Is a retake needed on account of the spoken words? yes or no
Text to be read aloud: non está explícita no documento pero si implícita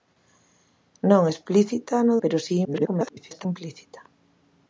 yes